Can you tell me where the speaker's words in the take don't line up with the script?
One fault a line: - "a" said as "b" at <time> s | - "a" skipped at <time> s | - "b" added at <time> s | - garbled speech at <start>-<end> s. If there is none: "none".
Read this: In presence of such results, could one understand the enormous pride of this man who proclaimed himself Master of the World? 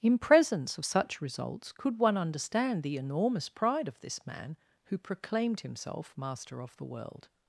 none